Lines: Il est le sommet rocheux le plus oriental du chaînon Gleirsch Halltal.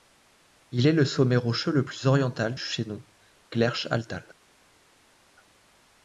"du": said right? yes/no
no